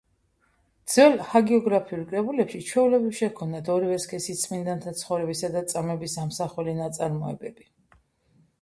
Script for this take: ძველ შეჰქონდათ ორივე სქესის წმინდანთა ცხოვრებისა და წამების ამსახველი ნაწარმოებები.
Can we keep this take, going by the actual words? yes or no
no